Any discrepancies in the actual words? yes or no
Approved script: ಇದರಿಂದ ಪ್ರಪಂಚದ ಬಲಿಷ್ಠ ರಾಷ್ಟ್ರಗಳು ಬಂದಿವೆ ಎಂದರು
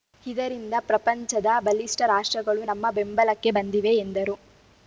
yes